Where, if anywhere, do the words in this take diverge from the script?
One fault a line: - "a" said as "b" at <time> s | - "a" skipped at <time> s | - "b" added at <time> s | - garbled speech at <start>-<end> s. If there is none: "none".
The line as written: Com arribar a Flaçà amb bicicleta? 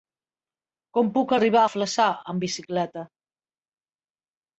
- "puc" added at 1.2 s